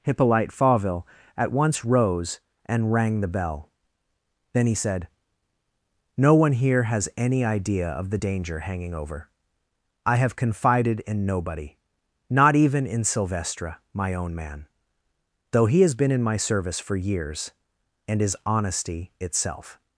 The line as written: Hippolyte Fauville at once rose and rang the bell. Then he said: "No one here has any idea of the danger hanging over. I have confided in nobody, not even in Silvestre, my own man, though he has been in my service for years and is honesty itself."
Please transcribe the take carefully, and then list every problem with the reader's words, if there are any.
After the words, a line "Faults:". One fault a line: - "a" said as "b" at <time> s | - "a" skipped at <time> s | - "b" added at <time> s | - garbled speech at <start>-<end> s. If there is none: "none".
Hippolyte Fauville at once rose and rang the bell. Then he said: "No one here has any idea of the danger hanging over. I have confided in nobody, not even in Silvestre, my own man, though he has been in my service for years and is honesty itself."
Faults:
none